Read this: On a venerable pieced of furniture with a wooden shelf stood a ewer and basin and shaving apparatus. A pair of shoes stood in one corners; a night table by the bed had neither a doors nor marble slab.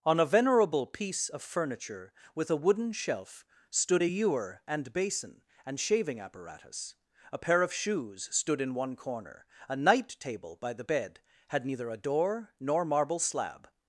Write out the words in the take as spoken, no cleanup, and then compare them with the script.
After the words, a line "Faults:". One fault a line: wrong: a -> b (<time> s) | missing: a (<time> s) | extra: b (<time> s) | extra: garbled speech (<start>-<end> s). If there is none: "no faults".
On a venerable piece of furniture with a wooden shelf stood a ewer and basin and shaving apparatus. A pair of shoes stood in one corner; a night table by the bed had neither a door nor marble slab.
Faults:
wrong: pieced -> piece (0.9 s)
wrong: corners -> corner (8.9 s)
wrong: doors -> door (11.9 s)